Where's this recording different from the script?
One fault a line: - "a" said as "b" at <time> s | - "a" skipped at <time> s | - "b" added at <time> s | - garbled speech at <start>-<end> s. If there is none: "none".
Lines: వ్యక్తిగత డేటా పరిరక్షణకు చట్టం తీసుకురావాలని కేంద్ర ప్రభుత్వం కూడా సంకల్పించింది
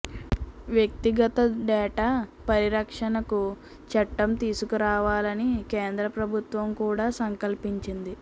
none